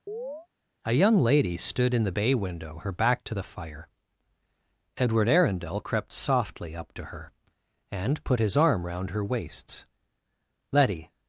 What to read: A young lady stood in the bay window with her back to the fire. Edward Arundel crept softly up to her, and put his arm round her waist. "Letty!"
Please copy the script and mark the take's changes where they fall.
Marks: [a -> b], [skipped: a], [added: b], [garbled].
A young lady stood in the bay window [skipped: with] her back to the fire. Edward Arundel crept softly up to her, and put his arm round her [waist. -> waists] "Letty!"